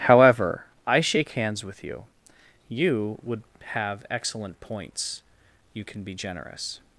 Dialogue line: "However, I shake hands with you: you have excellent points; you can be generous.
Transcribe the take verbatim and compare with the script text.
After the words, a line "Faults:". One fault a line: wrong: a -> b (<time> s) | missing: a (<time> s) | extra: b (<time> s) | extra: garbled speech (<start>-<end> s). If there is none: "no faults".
"However, I shake hands with you: you would have excellent points; you can be generous.
Faults:
extra: would (3.2 s)